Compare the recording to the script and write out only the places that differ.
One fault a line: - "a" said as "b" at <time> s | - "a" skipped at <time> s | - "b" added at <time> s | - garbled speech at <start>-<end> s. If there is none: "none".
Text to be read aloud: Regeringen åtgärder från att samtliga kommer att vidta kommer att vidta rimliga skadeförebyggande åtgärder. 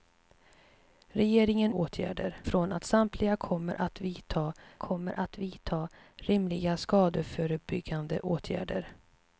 none